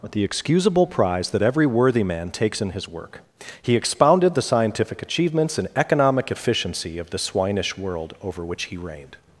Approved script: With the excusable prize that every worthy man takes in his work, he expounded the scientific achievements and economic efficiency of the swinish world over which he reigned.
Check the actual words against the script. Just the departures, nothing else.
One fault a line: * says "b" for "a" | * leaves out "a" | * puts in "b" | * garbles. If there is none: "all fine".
all fine